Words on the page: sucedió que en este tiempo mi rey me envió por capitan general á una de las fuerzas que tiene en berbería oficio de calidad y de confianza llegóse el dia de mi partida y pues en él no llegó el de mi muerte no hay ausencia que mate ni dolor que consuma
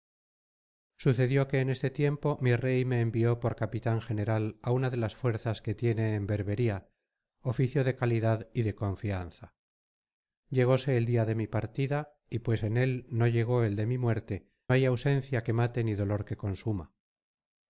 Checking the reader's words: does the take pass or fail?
fail